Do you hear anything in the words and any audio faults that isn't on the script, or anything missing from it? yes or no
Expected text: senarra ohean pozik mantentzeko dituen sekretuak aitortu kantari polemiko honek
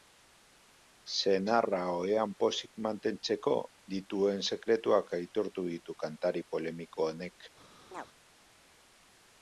yes